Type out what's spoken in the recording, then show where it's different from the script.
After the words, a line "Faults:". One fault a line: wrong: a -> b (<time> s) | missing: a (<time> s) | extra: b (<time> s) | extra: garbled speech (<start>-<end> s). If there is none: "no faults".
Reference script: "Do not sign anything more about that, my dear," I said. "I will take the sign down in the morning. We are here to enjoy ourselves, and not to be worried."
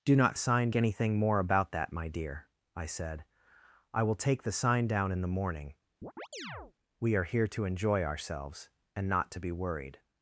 "Do not sign anything more about that, my dear," I said. "I will take the sign down in the morning. We are here to enjoy ourselves, and not to be worried."
Faults:
no faults